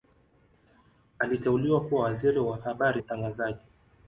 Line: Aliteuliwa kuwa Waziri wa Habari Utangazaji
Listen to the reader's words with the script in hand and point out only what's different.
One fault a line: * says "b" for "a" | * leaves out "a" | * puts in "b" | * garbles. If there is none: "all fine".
all fine